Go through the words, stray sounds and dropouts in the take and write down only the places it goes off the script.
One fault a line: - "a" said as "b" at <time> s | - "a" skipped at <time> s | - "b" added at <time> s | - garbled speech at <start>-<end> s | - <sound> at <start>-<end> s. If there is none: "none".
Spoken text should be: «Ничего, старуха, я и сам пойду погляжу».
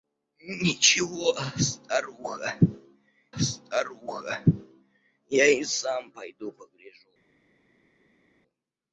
- "старуха" added at 3.4 s